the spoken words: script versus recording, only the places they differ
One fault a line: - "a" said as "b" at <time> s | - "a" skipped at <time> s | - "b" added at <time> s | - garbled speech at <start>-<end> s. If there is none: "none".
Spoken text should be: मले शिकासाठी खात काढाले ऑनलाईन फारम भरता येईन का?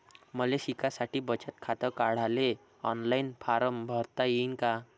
- "बचत" added at 1.2 s